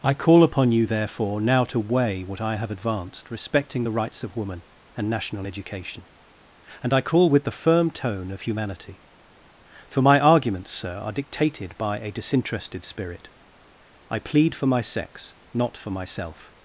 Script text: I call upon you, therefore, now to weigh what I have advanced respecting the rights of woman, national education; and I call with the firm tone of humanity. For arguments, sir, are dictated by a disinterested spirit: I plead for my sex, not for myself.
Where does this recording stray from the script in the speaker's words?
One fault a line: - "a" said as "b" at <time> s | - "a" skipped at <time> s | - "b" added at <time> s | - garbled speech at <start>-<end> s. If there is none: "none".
- "and" added at 5.0 s
- "my" added at 10.0 s